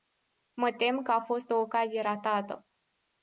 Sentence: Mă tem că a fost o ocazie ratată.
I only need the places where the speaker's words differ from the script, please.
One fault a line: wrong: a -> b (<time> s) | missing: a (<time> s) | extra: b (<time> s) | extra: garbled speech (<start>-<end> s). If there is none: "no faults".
no faults